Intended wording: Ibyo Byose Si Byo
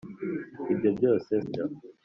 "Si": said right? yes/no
no